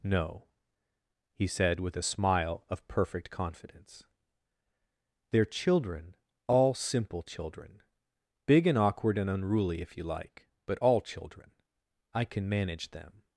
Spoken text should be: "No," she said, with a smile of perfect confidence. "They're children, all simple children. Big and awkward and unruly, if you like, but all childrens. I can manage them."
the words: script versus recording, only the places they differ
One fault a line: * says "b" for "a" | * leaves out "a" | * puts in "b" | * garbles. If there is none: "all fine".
* says "he" for "she"
* says "children" for "childrens"